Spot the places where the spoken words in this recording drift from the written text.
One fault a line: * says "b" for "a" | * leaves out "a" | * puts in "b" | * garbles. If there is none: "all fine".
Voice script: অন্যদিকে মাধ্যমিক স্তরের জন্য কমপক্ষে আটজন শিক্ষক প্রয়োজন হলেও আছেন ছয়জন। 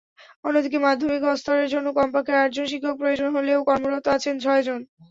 * puts in "কর্মরত"